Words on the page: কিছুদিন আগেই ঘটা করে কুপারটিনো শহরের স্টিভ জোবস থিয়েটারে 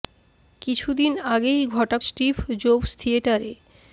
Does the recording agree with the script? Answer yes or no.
no